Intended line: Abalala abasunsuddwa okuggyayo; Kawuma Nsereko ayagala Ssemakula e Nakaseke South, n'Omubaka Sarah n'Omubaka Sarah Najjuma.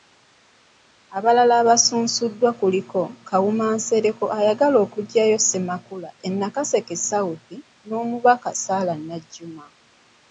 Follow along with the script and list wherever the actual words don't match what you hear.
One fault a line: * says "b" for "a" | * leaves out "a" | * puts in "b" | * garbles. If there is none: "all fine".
* says "kuliko" for "okuggyayo"
* puts in "okuggyayo"
* leaves out "n'Omubaka Sarah"